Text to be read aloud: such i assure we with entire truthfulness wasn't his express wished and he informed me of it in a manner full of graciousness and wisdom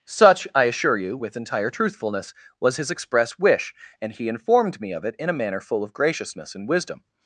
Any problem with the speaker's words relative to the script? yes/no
yes